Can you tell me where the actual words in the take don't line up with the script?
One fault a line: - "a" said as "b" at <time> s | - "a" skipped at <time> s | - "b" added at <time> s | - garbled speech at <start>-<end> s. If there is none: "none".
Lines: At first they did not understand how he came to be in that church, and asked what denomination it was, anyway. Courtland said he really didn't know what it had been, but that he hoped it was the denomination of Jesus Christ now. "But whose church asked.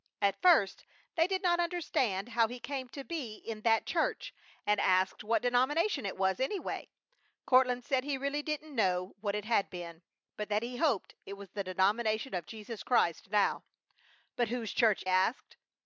none